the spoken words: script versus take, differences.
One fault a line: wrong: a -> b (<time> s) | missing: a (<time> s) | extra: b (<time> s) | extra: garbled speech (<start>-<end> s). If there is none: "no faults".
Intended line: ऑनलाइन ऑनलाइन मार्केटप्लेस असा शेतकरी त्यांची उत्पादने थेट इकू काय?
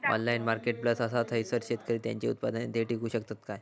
missing: ऑनलाइन (0.4 s)
extra: थयसर (1.3 s)
extra: शकतत (3.1 s)